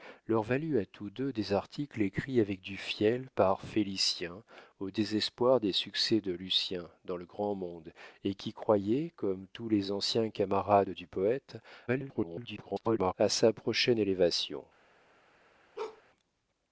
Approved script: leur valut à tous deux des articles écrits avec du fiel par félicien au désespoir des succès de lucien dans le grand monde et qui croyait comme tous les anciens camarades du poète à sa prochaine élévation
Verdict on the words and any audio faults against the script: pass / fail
fail